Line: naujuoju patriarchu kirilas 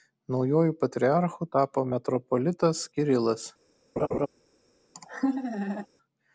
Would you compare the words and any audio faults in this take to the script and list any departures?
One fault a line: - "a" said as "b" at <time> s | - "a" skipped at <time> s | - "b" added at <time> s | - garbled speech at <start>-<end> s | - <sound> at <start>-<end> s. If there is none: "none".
- "tapo metropolitas" added at 1.6 s
- laugh at 4.0-4.3 s
- laugh at 4.9-5.9 s